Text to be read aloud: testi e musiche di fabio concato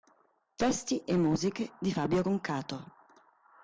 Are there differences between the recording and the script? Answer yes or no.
no